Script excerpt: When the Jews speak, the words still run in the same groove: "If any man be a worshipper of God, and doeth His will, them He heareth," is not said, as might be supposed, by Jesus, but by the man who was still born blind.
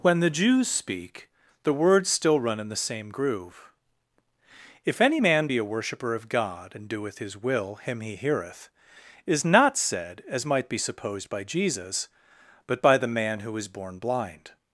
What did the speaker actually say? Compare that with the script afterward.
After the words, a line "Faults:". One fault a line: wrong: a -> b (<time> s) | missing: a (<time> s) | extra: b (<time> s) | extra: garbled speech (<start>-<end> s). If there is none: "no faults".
When the Jews speak, the words still run in the same groove: "If any man be a worshipper of God, and doeth His will, him He heareth," is not said, as might be supposed, by Jesus, but by the man who was born blind.
Faults:
wrong: them -> him (7.8 s)
missing: still (13.7 s)